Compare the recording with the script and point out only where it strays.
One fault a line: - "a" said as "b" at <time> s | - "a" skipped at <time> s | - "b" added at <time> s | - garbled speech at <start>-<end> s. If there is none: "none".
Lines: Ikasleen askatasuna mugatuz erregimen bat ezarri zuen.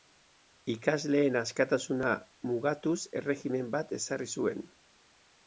none